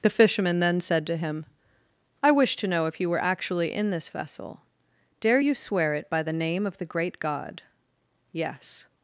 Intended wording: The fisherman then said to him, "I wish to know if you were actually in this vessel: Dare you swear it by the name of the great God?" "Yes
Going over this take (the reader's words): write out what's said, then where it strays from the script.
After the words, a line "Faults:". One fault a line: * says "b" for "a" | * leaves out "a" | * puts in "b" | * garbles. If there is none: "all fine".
The fisherman then said to him, "I wish to know if you were actually in this vessel: Dare you swear it by the name of the great God?" "Yes
Faults:
all fine